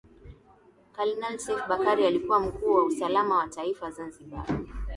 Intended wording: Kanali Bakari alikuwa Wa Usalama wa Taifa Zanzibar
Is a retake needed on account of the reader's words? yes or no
yes